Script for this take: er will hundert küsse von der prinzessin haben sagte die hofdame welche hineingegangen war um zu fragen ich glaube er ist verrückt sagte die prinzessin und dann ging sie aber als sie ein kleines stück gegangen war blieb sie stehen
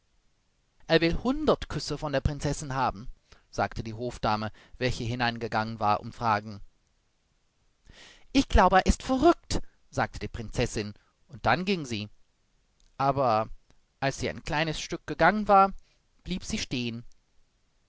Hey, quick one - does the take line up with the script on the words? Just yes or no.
no